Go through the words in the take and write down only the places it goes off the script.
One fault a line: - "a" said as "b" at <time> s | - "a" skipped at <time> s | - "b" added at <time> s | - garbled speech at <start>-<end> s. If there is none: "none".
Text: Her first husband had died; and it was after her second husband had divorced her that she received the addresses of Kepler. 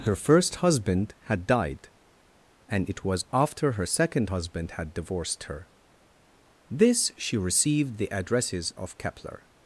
- "that" said as "this" at 6.7 s